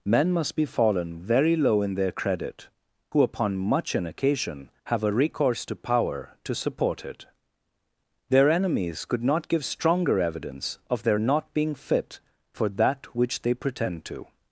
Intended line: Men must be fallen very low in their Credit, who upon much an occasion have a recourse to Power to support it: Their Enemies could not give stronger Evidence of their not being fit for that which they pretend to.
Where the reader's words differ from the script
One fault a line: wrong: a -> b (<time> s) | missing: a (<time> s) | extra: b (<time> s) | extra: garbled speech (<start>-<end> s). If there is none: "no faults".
no faults